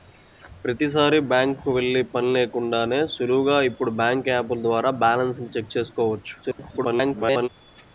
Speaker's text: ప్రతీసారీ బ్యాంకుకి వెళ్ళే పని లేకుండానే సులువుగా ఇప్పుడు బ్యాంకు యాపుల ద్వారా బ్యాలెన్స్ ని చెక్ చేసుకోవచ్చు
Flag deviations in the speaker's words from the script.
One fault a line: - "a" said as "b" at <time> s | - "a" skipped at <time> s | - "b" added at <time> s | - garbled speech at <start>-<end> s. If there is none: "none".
- garbled speech at 6.4-7.5 s